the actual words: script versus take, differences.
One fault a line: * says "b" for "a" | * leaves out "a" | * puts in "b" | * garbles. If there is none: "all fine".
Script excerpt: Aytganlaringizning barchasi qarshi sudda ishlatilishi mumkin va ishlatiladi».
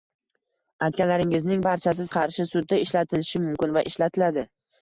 all fine